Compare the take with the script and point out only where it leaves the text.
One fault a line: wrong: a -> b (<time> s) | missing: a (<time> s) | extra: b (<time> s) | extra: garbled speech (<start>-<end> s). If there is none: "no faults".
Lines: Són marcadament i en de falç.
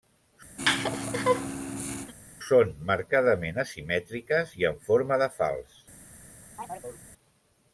extra: asimètriques (3.6 s)
extra: forma (4.9 s)